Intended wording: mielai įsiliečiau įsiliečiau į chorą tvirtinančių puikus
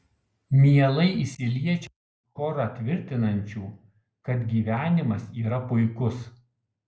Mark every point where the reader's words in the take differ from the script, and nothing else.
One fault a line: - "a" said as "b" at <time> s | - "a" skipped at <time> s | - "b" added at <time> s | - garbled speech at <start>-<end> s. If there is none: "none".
- "įsiliečiau" skipped at 1.9 s
- "kad gyvenimas yra" added at 4.3 s